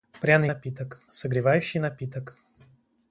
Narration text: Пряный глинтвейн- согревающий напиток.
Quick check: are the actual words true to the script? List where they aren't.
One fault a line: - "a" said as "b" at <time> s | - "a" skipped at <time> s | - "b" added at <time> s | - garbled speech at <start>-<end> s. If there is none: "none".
- "глинтвейн" said as "напиток" at 0.4 s